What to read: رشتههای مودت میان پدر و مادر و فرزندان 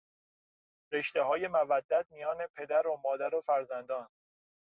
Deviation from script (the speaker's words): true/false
false